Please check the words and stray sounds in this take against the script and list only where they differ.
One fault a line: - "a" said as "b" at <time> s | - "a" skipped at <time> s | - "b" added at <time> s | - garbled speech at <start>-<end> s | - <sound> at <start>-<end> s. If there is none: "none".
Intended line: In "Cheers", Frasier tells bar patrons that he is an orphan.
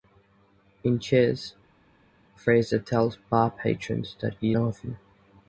- "is an" skipped at 4.5 s